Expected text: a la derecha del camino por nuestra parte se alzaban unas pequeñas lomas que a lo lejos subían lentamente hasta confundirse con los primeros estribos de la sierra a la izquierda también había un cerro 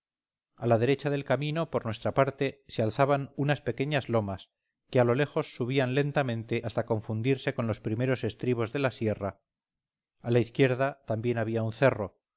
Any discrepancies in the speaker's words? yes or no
no